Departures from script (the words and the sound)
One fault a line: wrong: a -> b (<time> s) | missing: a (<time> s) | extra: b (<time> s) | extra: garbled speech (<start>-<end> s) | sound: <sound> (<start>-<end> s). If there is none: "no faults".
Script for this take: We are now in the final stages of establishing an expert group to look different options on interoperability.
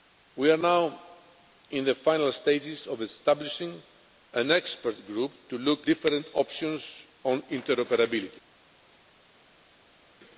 no faults